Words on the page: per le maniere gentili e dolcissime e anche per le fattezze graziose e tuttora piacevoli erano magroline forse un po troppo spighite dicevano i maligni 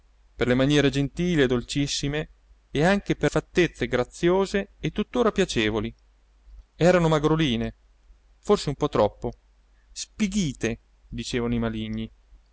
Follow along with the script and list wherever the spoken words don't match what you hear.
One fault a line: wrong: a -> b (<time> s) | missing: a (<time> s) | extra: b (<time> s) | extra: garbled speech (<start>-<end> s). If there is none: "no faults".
missing: le (3.3 s)